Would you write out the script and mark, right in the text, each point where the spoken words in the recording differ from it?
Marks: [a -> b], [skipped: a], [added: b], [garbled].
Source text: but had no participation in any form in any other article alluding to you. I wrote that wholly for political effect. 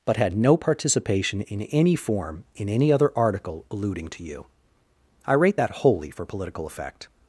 but had no participation in any form in any other article alluding to you. I [wrote -> rate] that wholly for political effect.